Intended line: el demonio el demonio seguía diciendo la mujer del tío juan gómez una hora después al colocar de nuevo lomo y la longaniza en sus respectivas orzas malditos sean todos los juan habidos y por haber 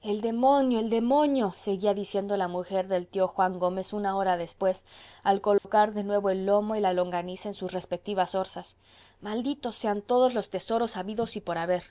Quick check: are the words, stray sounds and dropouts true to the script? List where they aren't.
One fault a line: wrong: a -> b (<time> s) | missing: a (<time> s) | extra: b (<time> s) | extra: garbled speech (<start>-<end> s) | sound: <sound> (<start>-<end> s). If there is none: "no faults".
sound: dropout (5.6-5.6 s)
extra: el (6.3 s)
wrong: juan -> tesoros (10.5 s)